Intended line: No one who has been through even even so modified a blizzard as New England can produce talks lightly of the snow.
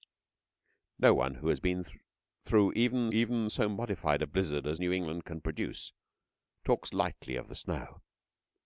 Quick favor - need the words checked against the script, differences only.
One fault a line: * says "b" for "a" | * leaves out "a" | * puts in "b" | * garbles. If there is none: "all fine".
all fine